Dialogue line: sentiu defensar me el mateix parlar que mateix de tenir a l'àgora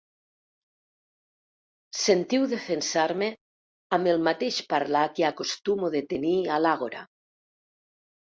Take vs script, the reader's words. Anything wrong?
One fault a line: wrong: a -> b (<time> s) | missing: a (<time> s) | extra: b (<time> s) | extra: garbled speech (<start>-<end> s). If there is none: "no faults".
extra: amb (4.0 s)
wrong: mateix -> acostumo (5.3 s)